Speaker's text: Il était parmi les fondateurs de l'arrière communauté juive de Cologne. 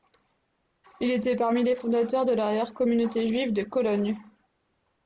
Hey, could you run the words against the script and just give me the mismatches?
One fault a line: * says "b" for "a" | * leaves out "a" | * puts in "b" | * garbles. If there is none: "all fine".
all fine